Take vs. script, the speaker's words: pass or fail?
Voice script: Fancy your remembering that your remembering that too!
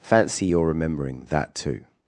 fail